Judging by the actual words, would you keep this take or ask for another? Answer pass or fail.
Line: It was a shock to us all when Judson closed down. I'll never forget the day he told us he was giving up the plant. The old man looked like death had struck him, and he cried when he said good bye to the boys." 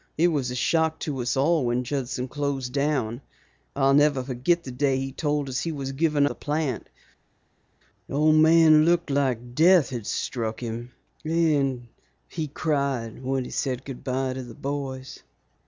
fail